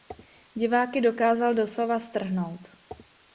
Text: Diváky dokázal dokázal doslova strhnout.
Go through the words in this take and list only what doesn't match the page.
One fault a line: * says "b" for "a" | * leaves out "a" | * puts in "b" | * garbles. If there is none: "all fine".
* leaves out "dokázal"